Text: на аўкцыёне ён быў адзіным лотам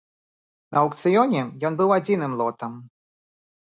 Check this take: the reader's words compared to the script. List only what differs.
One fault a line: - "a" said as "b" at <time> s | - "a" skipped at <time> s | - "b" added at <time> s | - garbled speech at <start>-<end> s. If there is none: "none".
none